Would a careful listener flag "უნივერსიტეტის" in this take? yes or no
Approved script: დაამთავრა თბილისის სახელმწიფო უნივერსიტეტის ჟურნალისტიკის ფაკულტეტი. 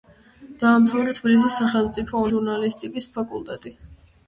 yes